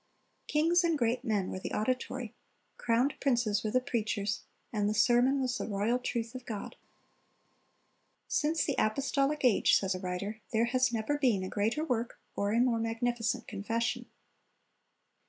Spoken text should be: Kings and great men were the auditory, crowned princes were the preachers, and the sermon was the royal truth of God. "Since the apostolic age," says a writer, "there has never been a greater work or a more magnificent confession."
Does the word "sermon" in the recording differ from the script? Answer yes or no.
no